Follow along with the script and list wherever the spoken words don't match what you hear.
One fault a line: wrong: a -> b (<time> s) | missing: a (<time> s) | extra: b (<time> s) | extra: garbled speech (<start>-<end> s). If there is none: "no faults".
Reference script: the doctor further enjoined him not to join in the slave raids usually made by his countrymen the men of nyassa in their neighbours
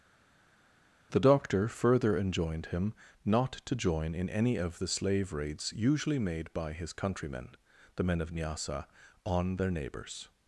extra: any of (4.3 s)
wrong: in -> on (9.2 s)